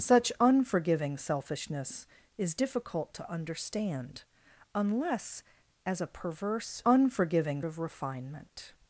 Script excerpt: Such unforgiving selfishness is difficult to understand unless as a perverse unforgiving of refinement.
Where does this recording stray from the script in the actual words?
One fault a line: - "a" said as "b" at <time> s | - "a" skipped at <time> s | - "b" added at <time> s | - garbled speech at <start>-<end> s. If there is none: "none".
none